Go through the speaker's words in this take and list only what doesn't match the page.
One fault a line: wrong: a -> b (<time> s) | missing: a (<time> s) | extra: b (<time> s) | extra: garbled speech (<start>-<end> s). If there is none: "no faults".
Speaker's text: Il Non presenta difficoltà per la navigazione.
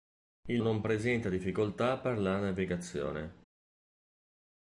no faults